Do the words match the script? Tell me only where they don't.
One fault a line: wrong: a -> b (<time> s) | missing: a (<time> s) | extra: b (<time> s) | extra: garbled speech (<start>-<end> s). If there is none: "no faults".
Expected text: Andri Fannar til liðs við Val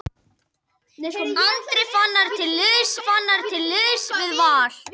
extra: Fannar til liðs (3.1 s)